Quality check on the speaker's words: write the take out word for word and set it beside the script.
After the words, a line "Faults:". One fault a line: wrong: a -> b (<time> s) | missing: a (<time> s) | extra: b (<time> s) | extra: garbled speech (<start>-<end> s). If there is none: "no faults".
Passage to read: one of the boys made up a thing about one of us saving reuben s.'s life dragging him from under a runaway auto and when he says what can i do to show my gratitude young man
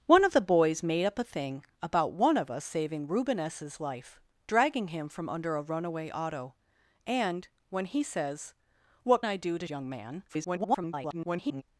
one of the boys made up a thing about one of us saving reuben s.'s life dragging him from under a runaway auto and when he says what i do to young man [garbled]
Faults:
missing: can (9.2 s)
missing: show my gratitude (9.7 s)
extra: garbled speech (10.3-11.6 s)